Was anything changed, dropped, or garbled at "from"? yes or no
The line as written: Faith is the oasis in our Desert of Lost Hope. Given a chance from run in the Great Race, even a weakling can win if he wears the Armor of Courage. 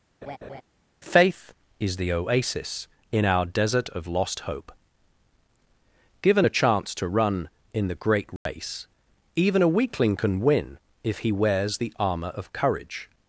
yes